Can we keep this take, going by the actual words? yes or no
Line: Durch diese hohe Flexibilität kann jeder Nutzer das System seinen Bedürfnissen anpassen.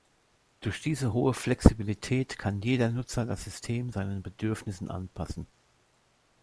yes